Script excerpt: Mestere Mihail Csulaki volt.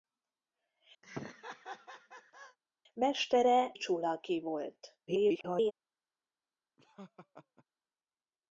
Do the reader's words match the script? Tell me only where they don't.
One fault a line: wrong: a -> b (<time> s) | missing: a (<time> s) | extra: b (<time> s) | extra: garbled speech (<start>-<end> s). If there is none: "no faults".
missing: Mihail (3.7 s)
extra: garbled speech (5.1-5.7 s)